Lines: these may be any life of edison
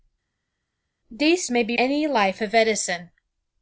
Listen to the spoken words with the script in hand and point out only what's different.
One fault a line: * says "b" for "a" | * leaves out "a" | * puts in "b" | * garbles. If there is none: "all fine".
all fine